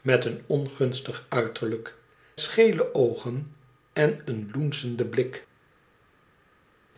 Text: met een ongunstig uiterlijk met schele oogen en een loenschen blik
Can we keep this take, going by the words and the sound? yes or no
no